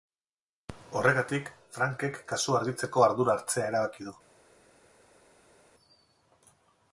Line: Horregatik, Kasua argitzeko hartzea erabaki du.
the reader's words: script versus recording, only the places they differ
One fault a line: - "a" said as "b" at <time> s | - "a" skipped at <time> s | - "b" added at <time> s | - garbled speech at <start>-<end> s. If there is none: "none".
- "Frankek" added at 1.8 s
- "ardura" added at 3.1 s